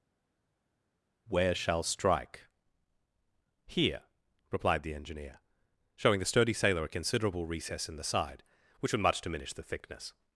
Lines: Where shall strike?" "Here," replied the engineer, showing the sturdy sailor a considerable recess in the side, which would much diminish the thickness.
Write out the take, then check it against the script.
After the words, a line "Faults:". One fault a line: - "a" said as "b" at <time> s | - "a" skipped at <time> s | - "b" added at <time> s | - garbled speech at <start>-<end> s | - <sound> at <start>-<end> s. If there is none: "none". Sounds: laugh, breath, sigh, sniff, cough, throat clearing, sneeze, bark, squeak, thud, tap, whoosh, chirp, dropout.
Where shall strike?" "Here," replied the engineer, showing the sturdy sailor a considerable recess in the side, which would much diminish the thickness.
Faults:
none